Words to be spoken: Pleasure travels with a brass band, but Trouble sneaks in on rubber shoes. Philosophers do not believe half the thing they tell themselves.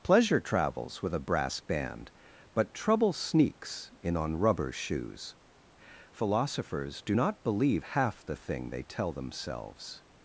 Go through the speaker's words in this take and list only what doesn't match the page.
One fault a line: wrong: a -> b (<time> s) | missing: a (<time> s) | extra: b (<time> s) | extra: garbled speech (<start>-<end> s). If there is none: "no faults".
no faults